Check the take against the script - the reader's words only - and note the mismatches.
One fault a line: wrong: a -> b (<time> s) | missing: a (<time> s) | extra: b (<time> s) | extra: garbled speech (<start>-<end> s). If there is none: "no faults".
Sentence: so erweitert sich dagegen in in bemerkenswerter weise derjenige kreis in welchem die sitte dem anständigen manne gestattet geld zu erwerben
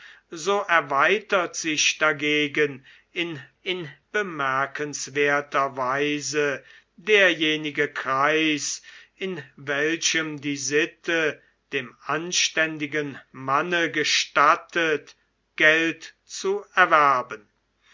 no faults